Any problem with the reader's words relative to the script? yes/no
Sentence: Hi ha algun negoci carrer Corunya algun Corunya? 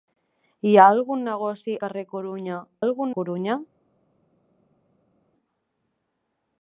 no